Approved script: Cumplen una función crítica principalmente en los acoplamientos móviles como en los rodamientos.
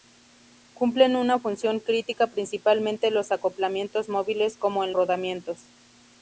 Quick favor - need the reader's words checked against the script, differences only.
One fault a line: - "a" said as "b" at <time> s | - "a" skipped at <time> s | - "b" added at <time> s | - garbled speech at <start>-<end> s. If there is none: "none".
- "los" skipped at 4.9 s